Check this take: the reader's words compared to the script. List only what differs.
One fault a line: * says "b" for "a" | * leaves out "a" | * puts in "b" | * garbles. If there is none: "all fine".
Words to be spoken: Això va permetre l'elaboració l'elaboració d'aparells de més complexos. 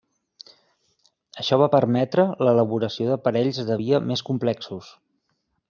* leaves out "l'elaboració"
* puts in "via"